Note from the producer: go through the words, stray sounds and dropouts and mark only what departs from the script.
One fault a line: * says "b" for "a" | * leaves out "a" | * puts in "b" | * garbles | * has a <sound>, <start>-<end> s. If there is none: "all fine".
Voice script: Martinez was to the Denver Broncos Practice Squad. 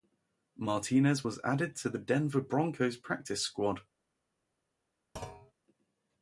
* puts in "added"
* has a thud, 5.2-5.5 s